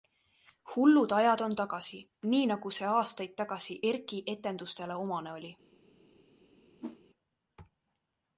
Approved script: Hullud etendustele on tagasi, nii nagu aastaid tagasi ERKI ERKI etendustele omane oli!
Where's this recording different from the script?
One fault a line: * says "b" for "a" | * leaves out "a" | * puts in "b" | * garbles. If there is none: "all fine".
* says "ajad" for "etendustele"
* puts in "see"
* leaves out "ERKI"